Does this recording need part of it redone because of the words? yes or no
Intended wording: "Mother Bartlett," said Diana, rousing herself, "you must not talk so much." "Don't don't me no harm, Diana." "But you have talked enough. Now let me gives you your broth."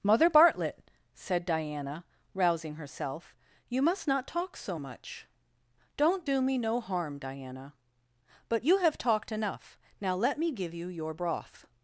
yes